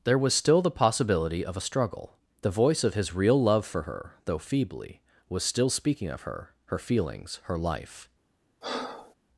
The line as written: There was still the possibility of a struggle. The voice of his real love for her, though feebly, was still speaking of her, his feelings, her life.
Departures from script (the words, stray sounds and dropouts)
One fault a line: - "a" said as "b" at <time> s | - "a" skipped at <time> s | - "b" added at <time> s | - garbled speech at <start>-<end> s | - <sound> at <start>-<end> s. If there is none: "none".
- "his" said as "her" at 6.7 s
- breath at 8.6-9.1 s